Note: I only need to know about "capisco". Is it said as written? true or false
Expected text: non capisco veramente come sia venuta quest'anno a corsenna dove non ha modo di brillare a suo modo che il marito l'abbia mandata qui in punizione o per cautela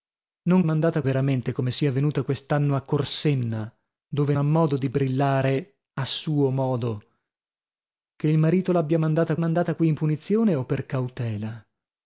false